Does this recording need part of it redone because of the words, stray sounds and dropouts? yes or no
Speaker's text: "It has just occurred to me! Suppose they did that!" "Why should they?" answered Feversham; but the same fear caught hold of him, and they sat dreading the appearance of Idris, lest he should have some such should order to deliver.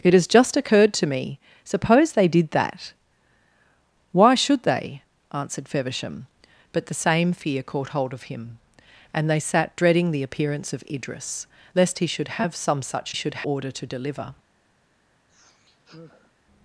yes